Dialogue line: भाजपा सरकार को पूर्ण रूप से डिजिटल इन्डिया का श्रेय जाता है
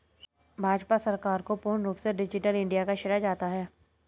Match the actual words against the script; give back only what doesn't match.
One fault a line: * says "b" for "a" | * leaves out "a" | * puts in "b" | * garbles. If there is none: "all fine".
all fine